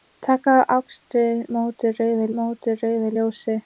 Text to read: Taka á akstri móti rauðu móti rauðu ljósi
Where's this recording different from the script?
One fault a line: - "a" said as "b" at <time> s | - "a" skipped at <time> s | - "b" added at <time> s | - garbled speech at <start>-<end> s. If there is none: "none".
none